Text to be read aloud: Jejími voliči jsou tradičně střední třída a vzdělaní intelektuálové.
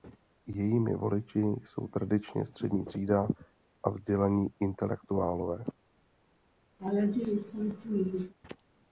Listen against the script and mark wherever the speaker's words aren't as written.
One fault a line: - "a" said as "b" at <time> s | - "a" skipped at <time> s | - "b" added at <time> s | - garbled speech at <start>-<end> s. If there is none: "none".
none